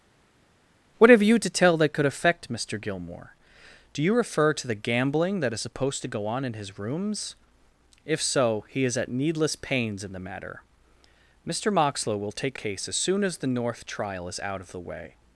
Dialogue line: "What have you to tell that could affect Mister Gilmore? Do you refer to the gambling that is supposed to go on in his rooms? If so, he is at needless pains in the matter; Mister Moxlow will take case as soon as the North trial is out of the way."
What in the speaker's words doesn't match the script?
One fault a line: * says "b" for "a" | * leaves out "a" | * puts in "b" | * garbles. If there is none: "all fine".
all fine